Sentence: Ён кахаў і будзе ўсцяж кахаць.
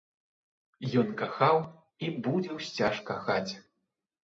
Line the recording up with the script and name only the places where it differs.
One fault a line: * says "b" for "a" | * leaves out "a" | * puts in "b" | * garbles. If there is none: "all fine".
all fine